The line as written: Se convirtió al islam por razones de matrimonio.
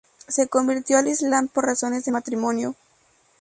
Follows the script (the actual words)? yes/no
yes